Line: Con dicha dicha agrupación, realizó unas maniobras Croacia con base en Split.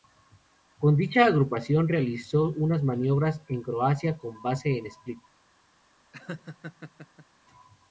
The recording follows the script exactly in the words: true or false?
false